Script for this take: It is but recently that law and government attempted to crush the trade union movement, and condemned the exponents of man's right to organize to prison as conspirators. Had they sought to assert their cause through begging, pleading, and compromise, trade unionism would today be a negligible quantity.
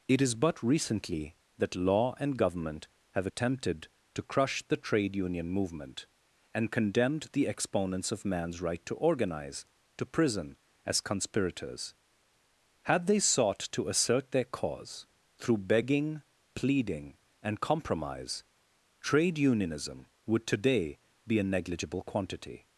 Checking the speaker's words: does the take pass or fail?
fail